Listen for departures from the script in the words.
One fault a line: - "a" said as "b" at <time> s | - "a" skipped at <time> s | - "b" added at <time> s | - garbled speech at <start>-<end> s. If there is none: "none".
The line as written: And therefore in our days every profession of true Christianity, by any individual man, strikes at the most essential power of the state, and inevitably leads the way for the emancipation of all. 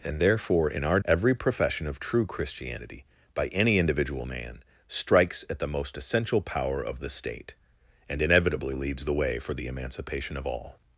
- "days" skipped at 1.0 s